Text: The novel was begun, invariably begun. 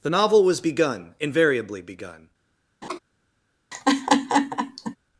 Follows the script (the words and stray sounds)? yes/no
no